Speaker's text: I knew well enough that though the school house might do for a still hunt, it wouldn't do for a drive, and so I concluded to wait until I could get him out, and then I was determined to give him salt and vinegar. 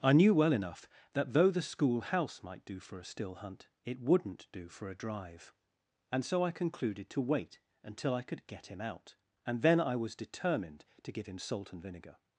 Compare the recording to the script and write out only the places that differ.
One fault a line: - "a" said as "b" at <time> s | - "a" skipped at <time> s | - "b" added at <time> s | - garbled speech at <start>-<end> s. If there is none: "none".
none